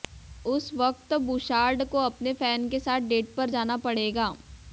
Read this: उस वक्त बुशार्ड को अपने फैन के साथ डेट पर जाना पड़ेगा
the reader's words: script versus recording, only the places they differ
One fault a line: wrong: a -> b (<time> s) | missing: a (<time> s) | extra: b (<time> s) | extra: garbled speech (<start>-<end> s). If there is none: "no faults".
no faults